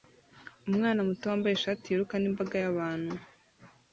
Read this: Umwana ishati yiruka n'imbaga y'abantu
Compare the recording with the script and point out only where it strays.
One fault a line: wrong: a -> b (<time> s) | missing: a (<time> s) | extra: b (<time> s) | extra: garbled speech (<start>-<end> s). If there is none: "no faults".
extra: muto wambaye (1.1 s)